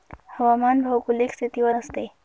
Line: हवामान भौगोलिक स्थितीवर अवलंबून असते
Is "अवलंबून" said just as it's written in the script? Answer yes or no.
no